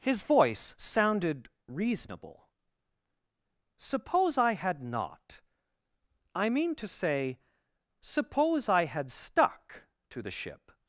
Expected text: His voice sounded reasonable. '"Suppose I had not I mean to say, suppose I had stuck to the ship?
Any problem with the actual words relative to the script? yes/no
no